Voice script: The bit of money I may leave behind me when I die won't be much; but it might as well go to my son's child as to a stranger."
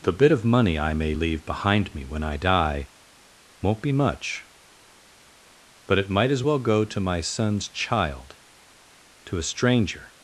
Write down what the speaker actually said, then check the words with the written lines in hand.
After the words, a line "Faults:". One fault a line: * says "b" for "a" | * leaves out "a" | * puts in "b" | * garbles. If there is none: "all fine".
The bit of money I may leave behind me when I die won't be much; but it might as well go to my son's child to a stranger."
Faults:
* leaves out "as"